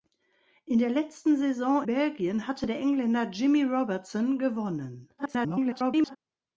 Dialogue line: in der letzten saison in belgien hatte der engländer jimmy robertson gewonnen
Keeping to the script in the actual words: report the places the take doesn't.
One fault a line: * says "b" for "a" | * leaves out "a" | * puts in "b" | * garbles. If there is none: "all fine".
* leaves out "in"
* garbles